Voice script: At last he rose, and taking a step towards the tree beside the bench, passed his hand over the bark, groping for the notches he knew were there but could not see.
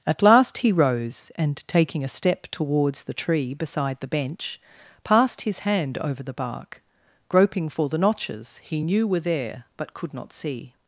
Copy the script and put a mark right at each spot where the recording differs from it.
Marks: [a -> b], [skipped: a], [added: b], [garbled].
At last he rose, and taking a step towards the tree beside the bench, passed his hand over the bark, groping for the notches he knew were there but could not see.